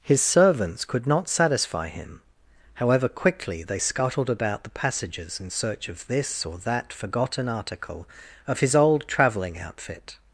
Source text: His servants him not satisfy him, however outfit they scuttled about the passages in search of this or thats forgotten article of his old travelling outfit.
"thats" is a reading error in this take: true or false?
true